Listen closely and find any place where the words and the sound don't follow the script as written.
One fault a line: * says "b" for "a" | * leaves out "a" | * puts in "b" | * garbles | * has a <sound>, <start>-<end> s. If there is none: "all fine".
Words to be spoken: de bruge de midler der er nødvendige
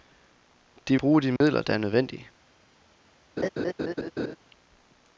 * has a dropout, 1.4-1.4 s
* has a laugh, 3.4-4.4 s